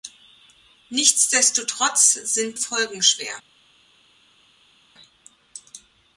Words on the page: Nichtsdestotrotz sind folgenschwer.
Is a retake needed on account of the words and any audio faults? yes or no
no